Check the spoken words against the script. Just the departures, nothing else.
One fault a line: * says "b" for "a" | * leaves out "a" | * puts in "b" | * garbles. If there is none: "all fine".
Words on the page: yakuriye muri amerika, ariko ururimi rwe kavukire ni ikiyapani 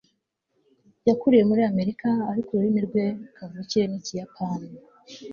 all fine